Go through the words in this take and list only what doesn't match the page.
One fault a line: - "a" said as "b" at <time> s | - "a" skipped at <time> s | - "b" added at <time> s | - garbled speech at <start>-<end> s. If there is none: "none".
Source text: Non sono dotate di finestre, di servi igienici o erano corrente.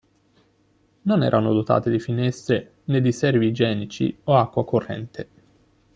- "sono" said as "erano" at 1.2 s
- "né" added at 2.9 s
- "erano" said as "acqua" at 4.3 s